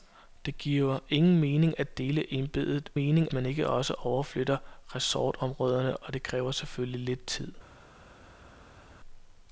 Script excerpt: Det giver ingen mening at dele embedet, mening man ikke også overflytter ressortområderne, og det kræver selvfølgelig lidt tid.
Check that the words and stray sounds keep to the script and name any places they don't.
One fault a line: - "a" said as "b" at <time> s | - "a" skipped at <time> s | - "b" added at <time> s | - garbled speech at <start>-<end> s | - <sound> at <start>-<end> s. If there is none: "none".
none